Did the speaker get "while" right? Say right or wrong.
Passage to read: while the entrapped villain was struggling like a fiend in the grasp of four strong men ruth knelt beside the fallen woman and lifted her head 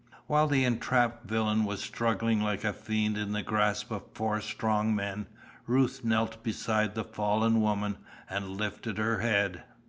right